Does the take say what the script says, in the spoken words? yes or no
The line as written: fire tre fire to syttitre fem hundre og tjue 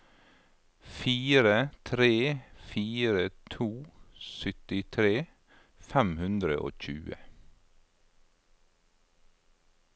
yes